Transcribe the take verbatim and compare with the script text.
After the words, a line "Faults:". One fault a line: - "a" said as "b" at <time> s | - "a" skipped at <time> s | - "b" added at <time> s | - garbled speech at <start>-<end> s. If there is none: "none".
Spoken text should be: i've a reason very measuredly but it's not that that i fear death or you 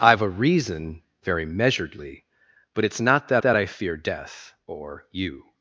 i've a reason very measuredly but it's not that that i fear death or you
Faults:
none